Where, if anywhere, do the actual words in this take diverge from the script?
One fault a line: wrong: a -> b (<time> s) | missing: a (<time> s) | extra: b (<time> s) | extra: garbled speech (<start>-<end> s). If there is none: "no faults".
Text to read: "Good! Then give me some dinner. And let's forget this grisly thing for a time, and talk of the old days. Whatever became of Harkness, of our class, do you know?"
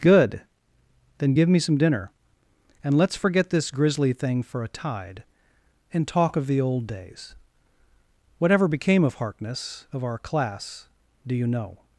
wrong: time -> tide (4.7 s)